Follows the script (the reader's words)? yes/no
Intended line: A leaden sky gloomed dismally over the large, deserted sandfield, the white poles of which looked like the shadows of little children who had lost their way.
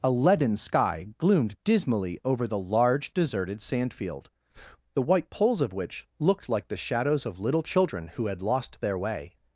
yes